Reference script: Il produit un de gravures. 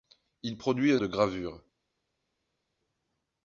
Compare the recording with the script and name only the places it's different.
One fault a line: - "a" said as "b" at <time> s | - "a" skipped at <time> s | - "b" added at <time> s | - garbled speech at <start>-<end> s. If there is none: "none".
none